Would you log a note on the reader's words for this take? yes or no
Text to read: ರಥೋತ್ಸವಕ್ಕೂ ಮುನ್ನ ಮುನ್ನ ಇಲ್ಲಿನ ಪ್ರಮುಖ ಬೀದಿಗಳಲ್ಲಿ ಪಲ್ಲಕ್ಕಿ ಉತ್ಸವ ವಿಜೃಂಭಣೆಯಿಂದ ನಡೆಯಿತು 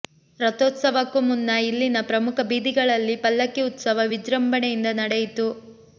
yes